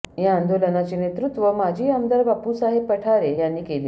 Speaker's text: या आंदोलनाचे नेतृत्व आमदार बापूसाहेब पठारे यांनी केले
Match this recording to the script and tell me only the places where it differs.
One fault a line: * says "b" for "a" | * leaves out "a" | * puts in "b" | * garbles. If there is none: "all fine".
* puts in "माजी"